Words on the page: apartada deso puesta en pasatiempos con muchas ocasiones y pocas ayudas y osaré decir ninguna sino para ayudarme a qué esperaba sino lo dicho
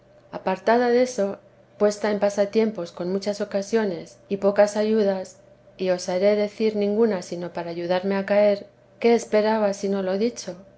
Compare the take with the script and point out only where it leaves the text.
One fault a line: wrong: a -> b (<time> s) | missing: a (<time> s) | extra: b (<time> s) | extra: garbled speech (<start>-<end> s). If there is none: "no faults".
extra: caer (8.2 s)